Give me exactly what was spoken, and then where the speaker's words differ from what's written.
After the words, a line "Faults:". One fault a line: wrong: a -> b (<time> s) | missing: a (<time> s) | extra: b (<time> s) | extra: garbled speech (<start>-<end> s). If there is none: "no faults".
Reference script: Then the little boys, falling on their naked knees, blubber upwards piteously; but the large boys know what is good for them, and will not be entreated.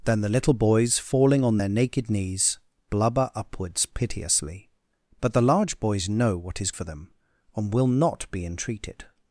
Then the little boys, falling on their naked knees, blubber upwards piteously; but the large boys know what is for them, and will not be entreated.
Faults:
missing: good (6.7 s)